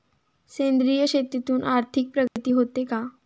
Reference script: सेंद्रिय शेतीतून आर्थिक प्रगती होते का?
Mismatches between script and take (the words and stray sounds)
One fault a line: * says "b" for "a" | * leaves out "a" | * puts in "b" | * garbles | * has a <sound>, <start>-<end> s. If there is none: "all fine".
* has a dropout, 2.3-2.4 s